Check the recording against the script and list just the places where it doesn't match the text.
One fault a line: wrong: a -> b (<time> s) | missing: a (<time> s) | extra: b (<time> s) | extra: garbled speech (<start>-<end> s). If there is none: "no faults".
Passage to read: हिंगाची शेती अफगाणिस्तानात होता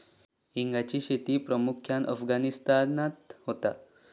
extra: प्रामुख्यान (1.4 s)